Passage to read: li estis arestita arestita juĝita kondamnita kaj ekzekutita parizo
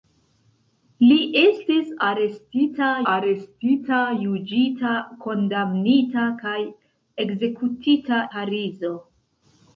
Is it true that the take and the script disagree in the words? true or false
false